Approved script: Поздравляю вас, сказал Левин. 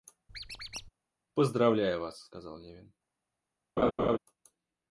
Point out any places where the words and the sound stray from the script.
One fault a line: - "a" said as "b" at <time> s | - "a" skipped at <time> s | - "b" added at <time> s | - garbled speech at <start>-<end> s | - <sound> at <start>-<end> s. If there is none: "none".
- squeak at 0.3-0.9 s
- laugh at 3.8-4.2 s